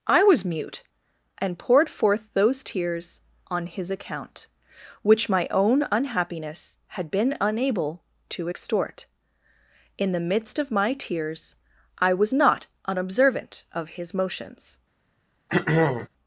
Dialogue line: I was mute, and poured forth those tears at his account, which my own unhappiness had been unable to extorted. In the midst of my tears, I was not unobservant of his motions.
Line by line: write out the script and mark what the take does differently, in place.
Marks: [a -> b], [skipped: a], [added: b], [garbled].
I was mute, and poured forth those tears [at -> on] his account, which my own unhappiness had been unable to [extorted. -> extort] In the midst of my tears, I was not unobservant of his motions.